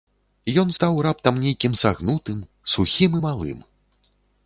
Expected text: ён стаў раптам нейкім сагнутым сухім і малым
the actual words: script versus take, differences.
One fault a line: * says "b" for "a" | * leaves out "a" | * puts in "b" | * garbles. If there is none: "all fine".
all fine